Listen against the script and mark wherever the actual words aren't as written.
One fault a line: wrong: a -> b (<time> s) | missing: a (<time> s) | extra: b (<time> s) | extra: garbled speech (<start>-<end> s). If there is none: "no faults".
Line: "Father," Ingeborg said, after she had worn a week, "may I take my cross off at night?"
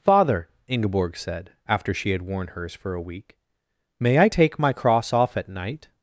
extra: hers for (2.5 s)